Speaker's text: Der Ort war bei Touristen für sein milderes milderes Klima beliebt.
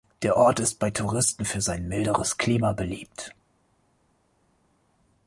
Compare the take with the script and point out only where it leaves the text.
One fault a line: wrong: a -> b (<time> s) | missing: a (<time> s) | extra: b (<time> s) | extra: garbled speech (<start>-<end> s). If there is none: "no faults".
wrong: war -> ist (0.6 s)
missing: milderes (2.4 s)